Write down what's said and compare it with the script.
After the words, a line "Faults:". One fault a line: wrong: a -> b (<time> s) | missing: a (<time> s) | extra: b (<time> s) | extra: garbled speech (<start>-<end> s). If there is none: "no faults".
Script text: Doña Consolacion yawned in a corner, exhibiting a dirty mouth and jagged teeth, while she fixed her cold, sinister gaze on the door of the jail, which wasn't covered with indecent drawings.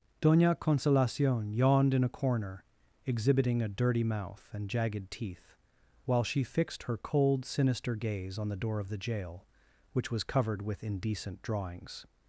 Doña Consolacion yawned in a corner, exhibiting a dirty mouth and jagged teeth, while she fixed her cold, sinister gaze on the door of the jail, which was covered with indecent drawings.
Faults:
wrong: wasn't -> was (10.1 s)